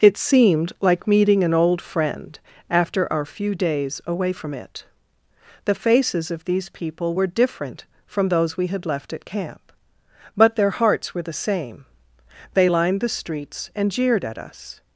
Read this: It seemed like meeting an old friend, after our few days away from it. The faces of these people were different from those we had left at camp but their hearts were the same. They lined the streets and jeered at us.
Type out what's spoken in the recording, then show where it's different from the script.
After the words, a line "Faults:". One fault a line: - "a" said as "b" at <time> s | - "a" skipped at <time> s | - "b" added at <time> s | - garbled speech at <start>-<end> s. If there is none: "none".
It seemed like meeting an old friend, after our few days away from it. The faces of these people were different from those we had left at camp but their hearts were the same. They lined the streets and jeered at us.
Faults:
none